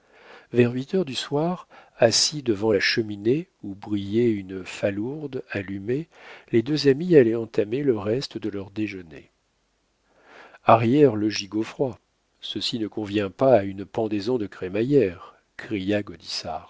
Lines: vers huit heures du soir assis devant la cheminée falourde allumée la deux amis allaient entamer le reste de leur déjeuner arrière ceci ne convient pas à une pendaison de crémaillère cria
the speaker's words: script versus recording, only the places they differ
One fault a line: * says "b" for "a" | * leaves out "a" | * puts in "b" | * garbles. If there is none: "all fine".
* puts in "où brillait une"
* says "les" for "la"
* puts in "le gigot froid"